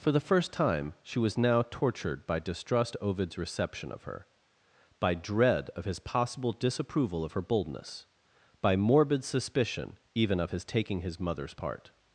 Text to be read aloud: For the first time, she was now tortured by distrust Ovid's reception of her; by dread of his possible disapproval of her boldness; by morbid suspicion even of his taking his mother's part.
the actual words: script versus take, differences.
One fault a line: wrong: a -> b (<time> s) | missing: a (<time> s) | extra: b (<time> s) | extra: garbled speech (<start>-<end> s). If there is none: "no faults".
no faults